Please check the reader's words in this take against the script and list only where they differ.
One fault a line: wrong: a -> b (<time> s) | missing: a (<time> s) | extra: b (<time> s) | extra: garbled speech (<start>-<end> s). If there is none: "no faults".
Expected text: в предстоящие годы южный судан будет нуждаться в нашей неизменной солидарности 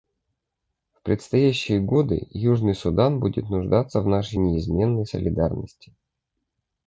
no faults